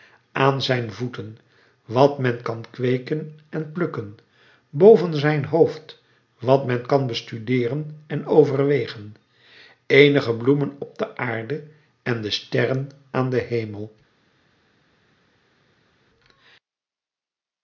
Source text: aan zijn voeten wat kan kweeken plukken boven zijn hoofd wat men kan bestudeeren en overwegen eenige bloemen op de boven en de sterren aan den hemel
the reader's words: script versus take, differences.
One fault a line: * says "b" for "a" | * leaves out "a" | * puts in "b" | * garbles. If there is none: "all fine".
* puts in "men"
* puts in "en"
* says "aarde" for "boven"